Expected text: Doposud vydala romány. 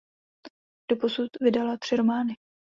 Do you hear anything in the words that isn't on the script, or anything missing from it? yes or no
yes